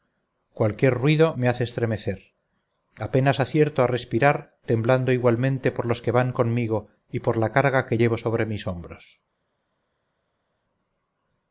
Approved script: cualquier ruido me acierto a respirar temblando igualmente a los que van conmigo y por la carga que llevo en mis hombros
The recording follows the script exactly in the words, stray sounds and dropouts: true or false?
false